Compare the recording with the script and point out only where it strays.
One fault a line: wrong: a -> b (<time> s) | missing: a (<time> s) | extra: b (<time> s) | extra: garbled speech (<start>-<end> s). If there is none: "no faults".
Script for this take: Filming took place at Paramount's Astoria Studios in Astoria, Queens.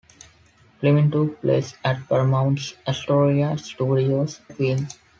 missing: in Astoria (4.4 s)